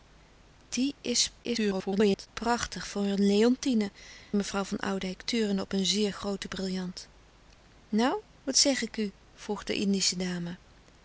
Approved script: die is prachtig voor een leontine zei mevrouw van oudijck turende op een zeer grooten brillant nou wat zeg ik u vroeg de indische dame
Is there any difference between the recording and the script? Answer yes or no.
yes